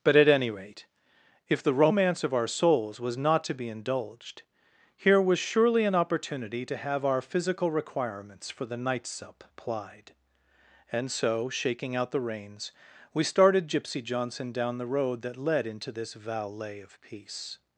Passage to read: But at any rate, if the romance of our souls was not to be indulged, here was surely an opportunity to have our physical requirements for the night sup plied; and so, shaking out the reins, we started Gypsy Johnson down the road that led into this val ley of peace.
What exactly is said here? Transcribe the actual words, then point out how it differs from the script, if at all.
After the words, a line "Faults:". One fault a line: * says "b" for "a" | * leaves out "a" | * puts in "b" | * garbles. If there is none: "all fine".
But at any rate, if the romance of our souls was not to be indulged, here was surely an opportunity to have our physical requirements for the night sup plied; and so, shaking out the reins, we started Gypsy Johnson down the road that led into this valet of peace.
Faults:
* says "valet" for "val ley"